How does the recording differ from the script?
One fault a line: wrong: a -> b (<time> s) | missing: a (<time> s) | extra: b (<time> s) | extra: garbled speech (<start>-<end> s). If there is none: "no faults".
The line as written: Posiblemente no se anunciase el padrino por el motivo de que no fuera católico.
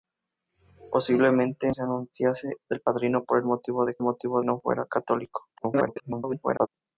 missing: no (1.7 s)
wrong: que -> motivo (4.0 s)
extra: garbled speech (5.6-6.7 s)